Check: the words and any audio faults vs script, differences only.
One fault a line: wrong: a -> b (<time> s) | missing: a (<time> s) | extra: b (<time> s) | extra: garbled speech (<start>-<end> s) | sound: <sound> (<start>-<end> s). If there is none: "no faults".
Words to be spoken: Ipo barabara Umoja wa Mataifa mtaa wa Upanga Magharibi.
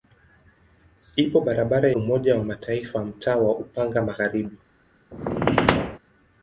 sound: squeak (5.1-6.0 s)